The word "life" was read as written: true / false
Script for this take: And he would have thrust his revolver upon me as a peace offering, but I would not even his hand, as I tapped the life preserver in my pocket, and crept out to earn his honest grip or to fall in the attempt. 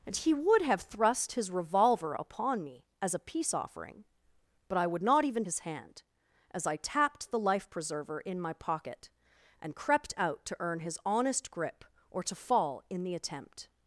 true